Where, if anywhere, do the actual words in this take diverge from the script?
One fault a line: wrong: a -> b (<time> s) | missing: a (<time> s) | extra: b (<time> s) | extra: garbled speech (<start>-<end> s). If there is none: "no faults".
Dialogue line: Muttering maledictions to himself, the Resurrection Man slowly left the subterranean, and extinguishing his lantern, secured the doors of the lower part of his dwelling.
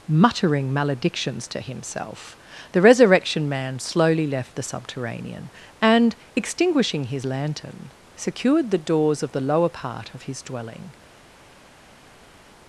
no faults